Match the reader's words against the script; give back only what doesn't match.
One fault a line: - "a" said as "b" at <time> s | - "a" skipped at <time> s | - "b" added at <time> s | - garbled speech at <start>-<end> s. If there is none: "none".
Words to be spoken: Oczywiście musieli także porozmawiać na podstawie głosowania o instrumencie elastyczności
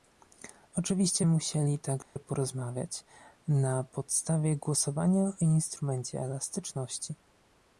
none